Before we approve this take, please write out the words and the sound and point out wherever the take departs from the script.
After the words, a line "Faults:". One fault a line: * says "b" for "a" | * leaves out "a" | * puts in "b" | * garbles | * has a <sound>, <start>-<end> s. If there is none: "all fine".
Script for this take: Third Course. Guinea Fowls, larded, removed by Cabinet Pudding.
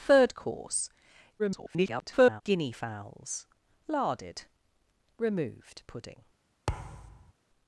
Third Course. [garbled] Guinea Fowls, larded, removed Pudding.
Faults:
* garbles
* leaves out "by Cabinet"
* has a thud, 6.7-7.3 s